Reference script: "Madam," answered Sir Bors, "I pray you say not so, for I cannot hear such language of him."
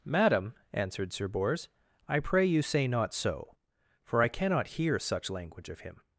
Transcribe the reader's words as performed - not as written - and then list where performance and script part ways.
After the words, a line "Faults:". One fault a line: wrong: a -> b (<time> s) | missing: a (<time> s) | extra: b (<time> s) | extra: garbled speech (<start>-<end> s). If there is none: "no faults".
"Madam," answered Sir Bors, "I pray you say not so, for I cannot hear such language of him."
Faults:
no faults